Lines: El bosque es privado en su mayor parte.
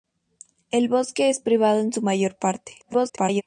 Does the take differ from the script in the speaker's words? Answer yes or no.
yes